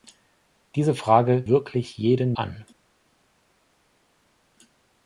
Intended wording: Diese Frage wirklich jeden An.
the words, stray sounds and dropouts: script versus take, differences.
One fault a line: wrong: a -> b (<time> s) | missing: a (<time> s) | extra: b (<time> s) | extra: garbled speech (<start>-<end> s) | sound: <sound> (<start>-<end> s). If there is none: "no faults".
no faults